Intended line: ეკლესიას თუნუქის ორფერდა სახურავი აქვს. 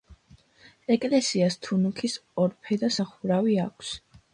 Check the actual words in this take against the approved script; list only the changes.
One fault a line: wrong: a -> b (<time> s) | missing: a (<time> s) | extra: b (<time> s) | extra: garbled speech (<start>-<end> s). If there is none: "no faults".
no faults